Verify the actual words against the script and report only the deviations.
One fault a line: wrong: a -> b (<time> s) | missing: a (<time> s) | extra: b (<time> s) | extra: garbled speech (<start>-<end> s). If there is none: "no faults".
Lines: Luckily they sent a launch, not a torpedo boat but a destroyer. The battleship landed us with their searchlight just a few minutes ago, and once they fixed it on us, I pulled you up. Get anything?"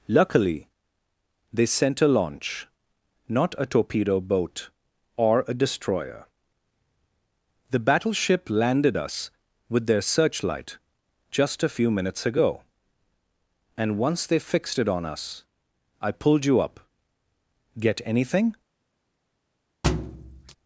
wrong: but -> or (5.2 s)